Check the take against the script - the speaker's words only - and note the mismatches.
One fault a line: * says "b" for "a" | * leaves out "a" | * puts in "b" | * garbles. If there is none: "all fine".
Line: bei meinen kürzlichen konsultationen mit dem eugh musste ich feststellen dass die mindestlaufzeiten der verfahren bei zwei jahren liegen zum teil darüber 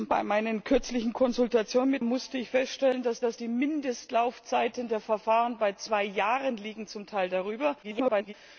* leaves out "dem eugh"
* puts in "dass"
* garbles